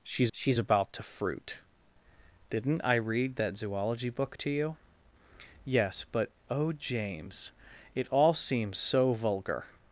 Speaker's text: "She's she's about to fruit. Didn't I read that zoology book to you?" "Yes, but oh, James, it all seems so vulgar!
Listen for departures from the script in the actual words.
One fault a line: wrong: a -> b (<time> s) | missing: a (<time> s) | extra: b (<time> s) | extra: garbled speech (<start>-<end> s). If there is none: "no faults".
no faults